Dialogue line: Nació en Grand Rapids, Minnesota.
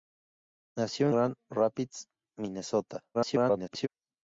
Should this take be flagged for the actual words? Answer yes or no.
yes